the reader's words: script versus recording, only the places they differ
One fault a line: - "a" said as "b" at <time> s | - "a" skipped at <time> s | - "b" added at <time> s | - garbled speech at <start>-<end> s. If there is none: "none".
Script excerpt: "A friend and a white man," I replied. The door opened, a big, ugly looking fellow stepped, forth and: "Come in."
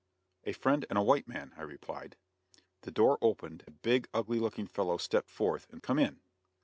none